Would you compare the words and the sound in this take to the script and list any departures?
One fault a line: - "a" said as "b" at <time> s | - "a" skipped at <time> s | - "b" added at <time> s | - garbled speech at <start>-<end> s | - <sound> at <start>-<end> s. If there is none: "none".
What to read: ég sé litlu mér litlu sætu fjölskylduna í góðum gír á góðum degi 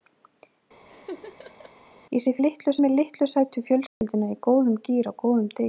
- laugh at 0.9-1.7 s
- dropout at 3.9-4.0 s